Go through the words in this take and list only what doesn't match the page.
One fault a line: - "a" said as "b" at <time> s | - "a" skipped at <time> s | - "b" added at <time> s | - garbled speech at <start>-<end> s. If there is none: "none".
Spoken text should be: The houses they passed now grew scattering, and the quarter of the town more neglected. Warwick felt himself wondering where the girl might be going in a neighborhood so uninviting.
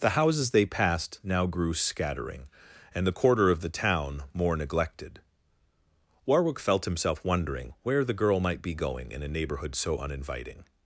none